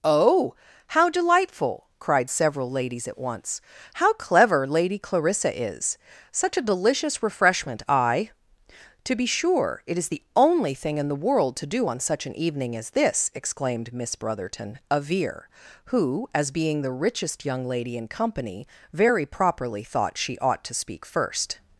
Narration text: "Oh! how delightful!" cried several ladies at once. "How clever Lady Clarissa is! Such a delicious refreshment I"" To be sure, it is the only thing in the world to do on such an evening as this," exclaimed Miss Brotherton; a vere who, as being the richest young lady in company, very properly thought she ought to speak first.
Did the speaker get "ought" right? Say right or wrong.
right